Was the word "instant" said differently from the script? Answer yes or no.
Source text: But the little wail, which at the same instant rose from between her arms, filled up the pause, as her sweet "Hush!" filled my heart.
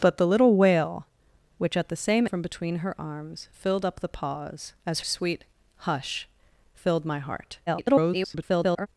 yes